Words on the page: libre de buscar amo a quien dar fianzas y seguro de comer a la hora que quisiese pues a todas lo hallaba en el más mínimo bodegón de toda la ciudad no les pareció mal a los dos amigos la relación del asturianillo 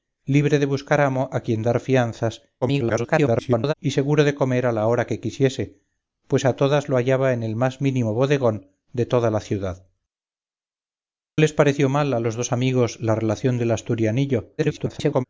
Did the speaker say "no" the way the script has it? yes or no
no